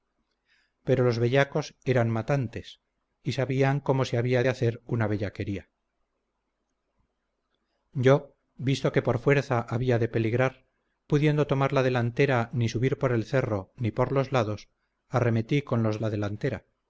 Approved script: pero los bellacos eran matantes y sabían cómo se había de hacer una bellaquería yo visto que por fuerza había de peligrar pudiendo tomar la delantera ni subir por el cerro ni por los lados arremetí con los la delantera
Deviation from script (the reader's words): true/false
false